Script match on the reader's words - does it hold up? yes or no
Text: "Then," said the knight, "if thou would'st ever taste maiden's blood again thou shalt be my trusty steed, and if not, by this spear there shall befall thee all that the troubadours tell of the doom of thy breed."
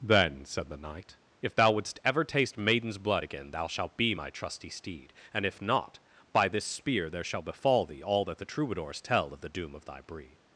yes